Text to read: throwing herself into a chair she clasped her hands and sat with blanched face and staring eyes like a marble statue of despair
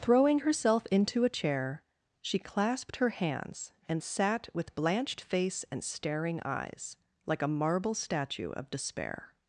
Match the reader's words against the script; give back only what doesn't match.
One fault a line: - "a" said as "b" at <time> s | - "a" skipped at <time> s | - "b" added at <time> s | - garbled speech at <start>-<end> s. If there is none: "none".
none